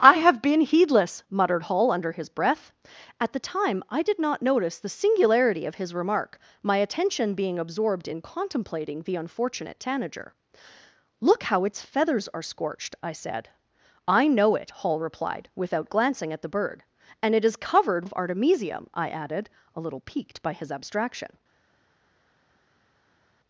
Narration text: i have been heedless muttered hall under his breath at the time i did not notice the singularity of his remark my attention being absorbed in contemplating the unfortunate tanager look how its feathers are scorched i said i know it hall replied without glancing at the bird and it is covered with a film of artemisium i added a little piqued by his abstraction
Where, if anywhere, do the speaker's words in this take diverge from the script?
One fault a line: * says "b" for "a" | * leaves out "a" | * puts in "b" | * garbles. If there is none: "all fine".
* leaves out "with a film"